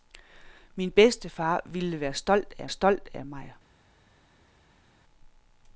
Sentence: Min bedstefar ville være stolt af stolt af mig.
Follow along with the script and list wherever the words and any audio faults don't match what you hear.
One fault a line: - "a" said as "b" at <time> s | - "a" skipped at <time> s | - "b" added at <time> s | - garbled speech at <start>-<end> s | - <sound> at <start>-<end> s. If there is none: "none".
none